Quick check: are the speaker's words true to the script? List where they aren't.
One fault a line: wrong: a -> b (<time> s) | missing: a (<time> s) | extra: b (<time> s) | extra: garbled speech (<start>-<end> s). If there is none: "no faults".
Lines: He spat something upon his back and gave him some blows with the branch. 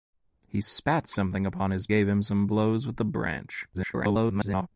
missing: back and (1.9 s)
extra: garbled speech (3.7-4.7 s)